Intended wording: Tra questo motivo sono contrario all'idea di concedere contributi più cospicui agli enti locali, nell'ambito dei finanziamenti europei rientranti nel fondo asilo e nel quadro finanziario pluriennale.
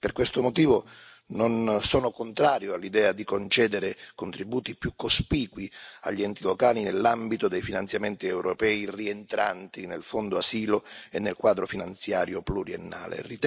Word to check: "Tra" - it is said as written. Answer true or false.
false